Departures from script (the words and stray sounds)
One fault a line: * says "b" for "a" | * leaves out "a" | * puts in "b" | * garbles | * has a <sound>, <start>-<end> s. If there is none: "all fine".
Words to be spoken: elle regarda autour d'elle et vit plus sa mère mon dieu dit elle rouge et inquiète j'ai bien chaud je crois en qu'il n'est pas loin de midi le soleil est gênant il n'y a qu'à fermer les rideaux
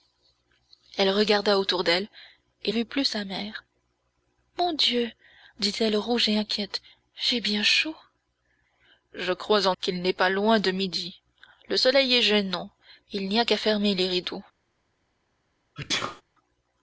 * has a sneeze, 15.8-16.2 s